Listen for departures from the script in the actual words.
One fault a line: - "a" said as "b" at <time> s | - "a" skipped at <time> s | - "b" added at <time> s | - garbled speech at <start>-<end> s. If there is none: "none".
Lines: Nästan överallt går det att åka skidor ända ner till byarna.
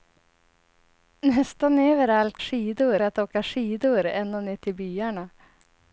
- "går" said as "skidor" at 2.4 s